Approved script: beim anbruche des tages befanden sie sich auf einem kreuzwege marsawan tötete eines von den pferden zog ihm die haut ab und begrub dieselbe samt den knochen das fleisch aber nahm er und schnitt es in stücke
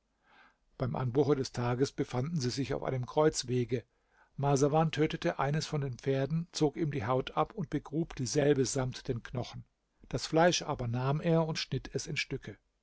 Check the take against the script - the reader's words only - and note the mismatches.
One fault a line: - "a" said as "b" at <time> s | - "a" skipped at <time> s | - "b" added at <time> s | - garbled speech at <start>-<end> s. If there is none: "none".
none